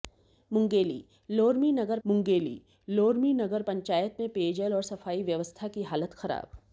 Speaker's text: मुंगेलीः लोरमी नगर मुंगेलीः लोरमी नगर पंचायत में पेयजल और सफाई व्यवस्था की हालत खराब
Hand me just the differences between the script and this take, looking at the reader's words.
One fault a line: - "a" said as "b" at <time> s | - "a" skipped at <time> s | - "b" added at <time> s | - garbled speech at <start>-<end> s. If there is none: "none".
none